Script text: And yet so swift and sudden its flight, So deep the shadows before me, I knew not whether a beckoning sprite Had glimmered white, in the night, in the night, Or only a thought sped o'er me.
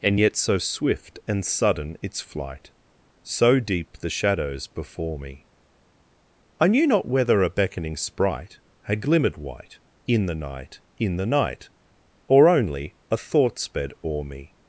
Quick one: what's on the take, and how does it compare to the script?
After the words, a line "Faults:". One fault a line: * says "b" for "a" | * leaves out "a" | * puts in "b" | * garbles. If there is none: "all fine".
And yet so swift and sudden its flight, So deep the shadows before me, I knew not whether a beckoning sprite Had glimmered white, in the night, in the night, Or only a thought sped o'er me.
Faults:
all fine